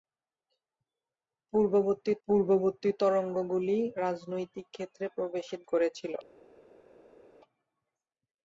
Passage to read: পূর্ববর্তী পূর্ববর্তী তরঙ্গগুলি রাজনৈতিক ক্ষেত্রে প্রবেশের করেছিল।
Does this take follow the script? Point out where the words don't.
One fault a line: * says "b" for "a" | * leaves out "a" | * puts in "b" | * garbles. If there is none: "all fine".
all fine